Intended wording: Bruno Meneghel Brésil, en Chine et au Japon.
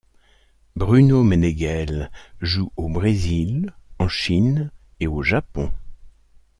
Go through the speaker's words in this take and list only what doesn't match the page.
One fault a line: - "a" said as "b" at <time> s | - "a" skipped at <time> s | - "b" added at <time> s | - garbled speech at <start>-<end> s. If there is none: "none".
- "joue au" added at 2.4 s